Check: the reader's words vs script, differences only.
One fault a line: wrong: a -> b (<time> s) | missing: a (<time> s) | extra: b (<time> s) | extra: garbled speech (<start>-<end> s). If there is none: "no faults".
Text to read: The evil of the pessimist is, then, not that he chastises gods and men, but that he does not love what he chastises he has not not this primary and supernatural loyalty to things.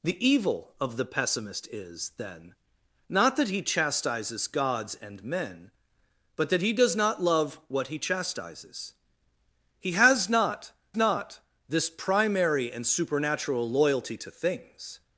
no faults